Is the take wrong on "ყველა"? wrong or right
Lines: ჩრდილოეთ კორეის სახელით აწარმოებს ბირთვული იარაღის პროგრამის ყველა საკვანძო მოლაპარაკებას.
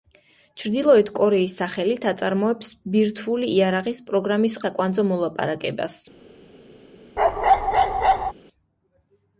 wrong